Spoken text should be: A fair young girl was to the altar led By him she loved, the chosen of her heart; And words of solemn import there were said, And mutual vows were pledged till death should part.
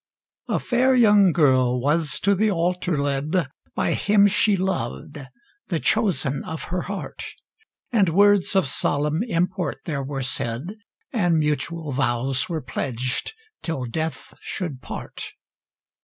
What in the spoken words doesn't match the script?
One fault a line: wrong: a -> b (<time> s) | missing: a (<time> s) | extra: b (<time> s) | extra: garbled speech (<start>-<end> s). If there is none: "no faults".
no faults